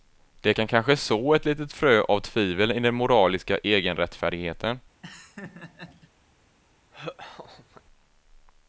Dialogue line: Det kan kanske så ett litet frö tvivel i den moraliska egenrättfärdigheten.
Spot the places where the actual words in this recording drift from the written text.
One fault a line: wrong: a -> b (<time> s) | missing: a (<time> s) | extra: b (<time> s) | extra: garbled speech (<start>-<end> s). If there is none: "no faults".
extra: av (2.0 s)